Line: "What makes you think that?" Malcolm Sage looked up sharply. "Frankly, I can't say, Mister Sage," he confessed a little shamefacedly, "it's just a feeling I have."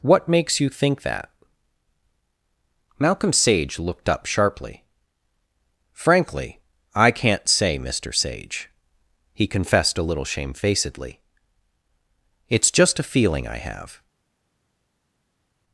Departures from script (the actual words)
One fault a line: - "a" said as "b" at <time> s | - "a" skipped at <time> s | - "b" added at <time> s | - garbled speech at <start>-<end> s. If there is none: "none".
none